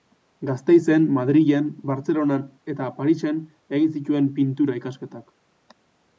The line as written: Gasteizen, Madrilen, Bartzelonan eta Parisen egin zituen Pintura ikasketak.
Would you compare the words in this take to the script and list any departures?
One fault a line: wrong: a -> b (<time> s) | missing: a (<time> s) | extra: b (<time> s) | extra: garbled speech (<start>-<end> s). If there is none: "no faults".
no faults